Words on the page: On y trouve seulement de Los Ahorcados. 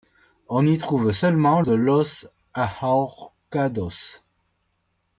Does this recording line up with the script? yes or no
yes